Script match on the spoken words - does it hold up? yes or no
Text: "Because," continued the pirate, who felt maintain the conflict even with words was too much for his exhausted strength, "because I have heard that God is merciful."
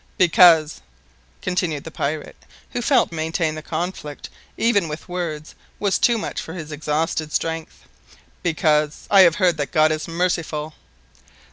yes